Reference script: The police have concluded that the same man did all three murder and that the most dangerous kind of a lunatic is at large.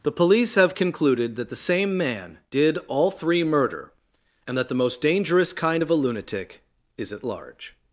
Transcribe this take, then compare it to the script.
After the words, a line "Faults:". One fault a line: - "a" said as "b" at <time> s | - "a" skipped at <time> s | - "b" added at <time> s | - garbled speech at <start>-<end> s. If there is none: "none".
The police have concluded that the same man did all three murder and that the most dangerous kind of a lunatic is at large.
Faults:
none